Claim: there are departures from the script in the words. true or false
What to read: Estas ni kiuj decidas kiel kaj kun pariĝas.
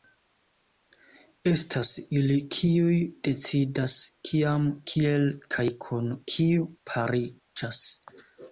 true